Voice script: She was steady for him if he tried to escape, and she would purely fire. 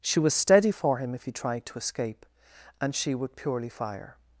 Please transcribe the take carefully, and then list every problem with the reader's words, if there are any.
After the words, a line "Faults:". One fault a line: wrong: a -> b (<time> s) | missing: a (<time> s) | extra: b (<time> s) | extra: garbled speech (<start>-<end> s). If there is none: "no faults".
She was steady for him if he tried to escape, and she would purely fire.
Faults:
no faults